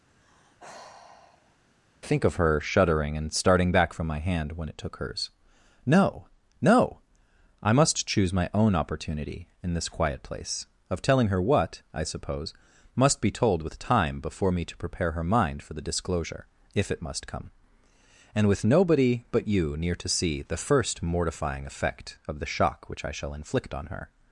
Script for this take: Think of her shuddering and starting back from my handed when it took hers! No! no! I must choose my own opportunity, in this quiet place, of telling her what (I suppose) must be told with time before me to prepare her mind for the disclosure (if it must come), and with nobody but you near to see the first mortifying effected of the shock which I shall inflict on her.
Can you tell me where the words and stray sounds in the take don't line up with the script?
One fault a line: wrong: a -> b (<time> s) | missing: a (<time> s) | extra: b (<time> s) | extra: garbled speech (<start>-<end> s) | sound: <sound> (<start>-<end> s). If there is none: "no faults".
sound: sigh (0.1-1.6 s)
wrong: handed -> hand (4.2 s)
wrong: effected -> effect (21.6 s)